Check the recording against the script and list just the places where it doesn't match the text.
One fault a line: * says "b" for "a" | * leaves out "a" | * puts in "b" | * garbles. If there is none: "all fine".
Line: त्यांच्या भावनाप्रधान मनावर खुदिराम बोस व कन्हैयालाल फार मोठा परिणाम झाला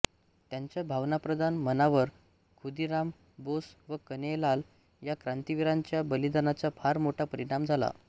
* puts in "या क्रांतिवीरांच्या बलिदानाचा"